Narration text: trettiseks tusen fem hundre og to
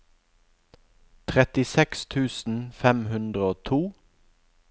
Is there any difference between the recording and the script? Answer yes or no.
no